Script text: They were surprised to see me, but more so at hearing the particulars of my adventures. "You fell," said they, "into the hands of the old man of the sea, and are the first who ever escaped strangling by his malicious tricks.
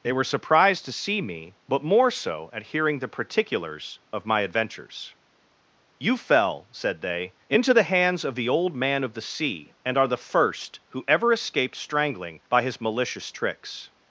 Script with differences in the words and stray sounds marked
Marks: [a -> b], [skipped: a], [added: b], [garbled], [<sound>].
They were surprised to see me, but more so at hearing the particulars of my adventures. "You fell," said they, "into the hands of the old man of the sea, and are the first who ever escaped strangling by his malicious tricks.